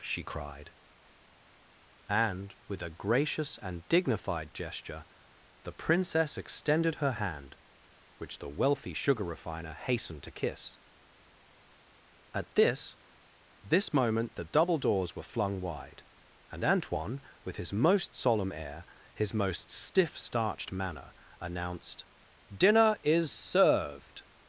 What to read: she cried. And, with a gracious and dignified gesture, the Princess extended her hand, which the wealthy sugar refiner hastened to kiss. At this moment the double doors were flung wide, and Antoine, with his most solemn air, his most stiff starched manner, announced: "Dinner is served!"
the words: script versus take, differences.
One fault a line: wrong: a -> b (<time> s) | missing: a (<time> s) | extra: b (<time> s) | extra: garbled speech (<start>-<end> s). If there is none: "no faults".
extra: this (13.6 s)